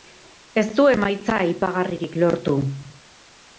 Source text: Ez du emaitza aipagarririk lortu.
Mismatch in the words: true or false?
false